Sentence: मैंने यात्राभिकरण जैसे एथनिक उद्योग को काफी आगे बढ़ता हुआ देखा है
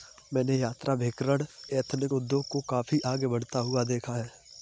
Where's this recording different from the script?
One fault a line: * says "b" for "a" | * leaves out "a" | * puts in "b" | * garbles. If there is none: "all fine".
* leaves out "जैसे"